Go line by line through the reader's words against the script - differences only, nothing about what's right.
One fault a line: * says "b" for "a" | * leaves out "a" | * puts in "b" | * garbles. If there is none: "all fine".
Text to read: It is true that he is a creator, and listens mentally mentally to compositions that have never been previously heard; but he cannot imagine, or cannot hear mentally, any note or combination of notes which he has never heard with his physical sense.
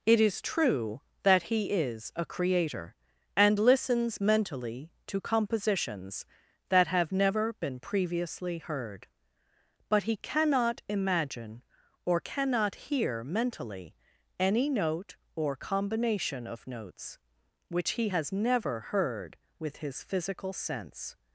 * leaves out "mentally"